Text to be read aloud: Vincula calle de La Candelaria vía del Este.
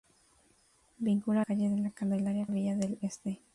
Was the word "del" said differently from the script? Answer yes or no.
no